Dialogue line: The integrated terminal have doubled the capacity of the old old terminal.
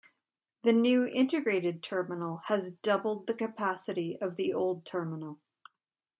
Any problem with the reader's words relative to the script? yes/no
yes